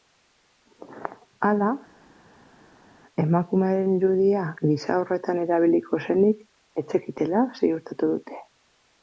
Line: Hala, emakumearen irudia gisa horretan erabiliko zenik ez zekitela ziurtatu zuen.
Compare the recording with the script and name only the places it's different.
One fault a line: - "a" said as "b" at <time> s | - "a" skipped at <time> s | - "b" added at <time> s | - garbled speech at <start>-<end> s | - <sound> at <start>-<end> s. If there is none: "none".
- "zuen" said as "dute" at 8.2 s